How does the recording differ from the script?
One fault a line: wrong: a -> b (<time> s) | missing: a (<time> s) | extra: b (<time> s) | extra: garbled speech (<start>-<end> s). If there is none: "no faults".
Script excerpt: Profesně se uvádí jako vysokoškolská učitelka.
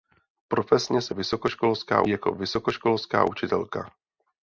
wrong: uvádí -> vysokoškolská (1.1 s)